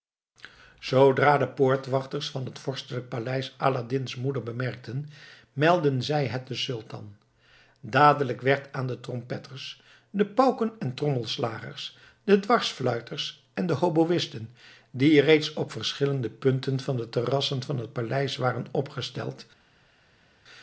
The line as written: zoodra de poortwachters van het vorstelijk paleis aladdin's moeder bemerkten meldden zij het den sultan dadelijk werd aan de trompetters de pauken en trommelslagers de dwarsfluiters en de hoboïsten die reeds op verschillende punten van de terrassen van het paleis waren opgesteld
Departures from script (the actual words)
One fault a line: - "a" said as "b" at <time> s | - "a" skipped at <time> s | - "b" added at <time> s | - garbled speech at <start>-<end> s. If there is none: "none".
none